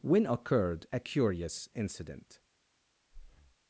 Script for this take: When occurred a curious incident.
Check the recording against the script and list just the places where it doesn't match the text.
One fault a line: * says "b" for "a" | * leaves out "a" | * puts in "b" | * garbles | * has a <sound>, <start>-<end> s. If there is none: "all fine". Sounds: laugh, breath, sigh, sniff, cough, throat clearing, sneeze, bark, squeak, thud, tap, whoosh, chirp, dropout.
* has a breath, 3.1-3.6 s